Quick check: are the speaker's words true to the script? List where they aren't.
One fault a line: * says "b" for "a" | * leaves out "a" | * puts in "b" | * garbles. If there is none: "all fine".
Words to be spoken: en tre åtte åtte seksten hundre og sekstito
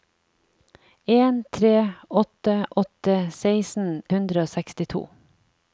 all fine